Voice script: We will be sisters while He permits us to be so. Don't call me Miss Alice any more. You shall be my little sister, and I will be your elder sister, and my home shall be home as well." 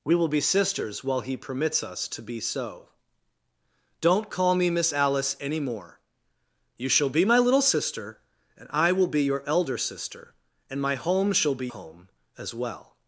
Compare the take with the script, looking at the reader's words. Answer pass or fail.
pass